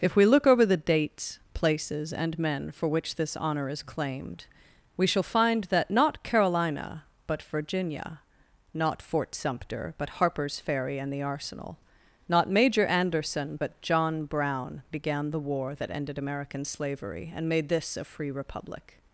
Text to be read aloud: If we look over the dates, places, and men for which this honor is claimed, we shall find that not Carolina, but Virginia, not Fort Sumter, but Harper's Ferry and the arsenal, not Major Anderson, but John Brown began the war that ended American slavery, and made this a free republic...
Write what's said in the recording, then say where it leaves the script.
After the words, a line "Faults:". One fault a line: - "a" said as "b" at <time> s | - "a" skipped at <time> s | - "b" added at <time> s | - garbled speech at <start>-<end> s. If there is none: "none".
If we look over the dates, places, and men for which this honor is claimed, we shall find that not Carolina, but Virginia, not Fort Sumter, but Harper's Ferry and the arsenal, not Major Anderson, but John Brown began the war that ended American slavery, and made this a free republic...
Faults:
none